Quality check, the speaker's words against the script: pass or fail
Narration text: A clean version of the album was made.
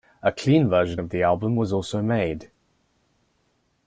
fail